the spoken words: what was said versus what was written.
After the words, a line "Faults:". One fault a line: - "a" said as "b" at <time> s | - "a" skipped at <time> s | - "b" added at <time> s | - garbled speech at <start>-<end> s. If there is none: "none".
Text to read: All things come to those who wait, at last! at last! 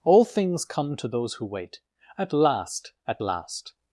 All things come to those who wait, at last! at last!
Faults:
none